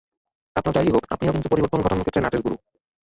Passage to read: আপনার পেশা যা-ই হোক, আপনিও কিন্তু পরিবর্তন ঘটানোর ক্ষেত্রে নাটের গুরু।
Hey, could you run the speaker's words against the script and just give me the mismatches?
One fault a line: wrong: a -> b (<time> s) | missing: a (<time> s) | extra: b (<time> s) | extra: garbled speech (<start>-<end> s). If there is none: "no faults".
missing: পেশা (0.8 s)